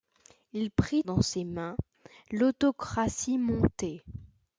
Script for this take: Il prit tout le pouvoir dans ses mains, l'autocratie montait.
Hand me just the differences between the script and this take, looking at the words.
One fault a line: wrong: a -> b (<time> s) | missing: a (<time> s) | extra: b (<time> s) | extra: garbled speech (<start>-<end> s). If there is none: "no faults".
missing: tout le pouvoir (1.0 s)